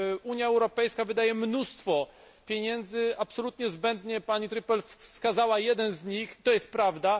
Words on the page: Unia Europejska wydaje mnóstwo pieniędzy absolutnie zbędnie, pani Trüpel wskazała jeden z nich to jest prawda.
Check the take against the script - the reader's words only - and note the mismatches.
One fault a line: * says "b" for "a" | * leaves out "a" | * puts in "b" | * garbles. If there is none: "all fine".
all fine